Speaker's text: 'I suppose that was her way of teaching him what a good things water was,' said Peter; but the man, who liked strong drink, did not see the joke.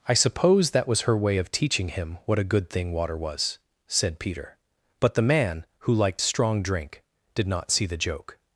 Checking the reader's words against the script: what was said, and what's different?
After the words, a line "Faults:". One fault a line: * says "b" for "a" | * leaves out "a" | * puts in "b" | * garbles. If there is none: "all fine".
'I suppose that was her way of teaching him what a good thing water was,' said Peter; but the man, who liked strong drink, did not see the joke.
Faults:
* says "thing" for "things"